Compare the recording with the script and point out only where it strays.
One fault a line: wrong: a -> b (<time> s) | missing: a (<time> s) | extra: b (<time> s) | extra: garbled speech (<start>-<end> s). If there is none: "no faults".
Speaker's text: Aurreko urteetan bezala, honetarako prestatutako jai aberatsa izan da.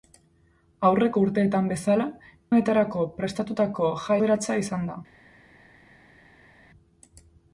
no faults